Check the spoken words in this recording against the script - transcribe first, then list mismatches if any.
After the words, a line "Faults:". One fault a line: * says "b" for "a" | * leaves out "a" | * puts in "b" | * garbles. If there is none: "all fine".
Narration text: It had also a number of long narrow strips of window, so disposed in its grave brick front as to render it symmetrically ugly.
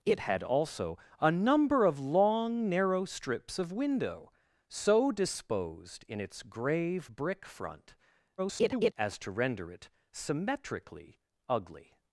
It had also a number of long narrow strips of window, so disposed in its grave brick front [garbled] as to render it symmetrically ugly.
Faults:
* garbles